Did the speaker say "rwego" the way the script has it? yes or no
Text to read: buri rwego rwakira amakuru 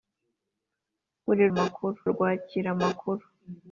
no